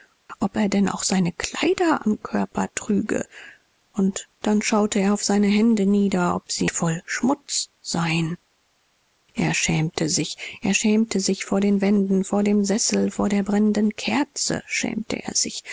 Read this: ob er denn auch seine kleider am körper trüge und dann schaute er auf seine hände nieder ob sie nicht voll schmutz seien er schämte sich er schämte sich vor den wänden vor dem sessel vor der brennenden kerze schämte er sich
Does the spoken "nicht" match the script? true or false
false